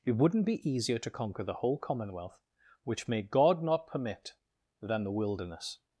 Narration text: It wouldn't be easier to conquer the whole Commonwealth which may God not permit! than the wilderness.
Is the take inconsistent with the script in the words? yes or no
no